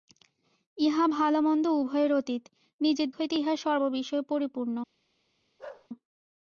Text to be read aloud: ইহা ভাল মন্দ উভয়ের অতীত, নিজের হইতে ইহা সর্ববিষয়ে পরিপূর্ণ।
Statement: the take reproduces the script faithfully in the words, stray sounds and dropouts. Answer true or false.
false